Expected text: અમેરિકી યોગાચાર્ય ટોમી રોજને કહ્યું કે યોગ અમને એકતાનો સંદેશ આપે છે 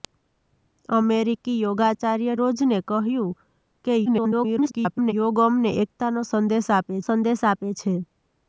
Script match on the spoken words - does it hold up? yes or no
no